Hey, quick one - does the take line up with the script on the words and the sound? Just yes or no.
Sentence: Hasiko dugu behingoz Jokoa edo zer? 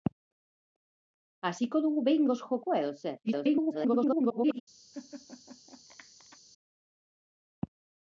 no